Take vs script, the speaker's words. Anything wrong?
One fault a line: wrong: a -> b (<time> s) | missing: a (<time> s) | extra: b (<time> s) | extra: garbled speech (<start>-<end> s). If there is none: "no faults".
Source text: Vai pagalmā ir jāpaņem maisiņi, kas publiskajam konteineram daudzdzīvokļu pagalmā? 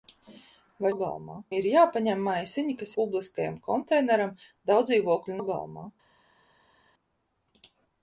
no faults